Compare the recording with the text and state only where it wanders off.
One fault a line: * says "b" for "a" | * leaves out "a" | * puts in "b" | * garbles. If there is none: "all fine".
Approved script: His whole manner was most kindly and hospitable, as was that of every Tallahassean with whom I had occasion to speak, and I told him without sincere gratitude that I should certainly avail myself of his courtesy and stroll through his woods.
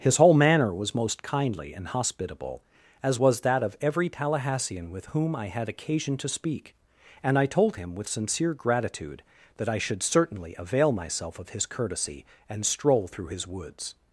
* says "with" for "without"